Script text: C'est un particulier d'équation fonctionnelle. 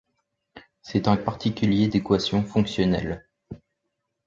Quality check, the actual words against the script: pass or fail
pass